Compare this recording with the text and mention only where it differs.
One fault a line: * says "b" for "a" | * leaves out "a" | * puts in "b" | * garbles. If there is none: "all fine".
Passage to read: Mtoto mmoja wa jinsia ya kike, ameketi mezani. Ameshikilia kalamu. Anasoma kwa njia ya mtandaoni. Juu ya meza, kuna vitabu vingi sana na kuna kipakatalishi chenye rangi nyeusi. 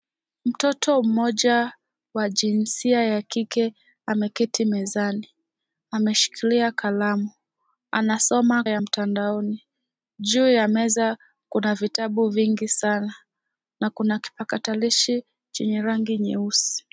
* leaves out "kwa njia"